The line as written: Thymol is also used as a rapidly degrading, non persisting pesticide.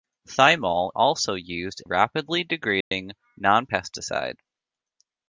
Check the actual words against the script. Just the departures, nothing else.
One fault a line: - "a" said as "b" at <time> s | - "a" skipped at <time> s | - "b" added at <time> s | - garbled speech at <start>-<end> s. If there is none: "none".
- "is" skipped at 0.9 s
- "as a" skipped at 1.8 s
- "persisting" skipped at 3.6 s